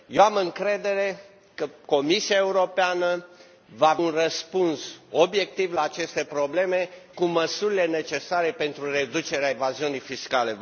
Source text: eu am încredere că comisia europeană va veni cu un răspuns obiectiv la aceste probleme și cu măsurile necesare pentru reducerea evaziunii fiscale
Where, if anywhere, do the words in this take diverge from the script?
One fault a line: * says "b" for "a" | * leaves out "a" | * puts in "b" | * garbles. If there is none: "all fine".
* leaves out "veni cu"
* leaves out "și"